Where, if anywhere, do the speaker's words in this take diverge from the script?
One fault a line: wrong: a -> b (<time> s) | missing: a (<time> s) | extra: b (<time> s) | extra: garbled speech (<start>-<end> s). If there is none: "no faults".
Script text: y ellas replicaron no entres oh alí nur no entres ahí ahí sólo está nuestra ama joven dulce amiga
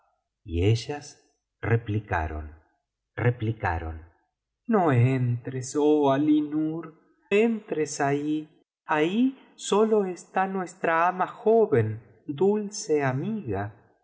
extra: replicaron (3.2 s)
missing: no (7.0 s)